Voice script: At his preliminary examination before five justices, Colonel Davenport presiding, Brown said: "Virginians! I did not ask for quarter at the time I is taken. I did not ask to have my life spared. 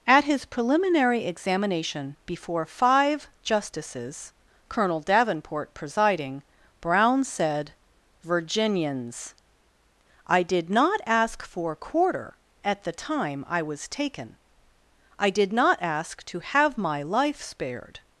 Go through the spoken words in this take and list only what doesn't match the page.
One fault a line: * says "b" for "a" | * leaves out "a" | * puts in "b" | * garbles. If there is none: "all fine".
* says "was" for "is"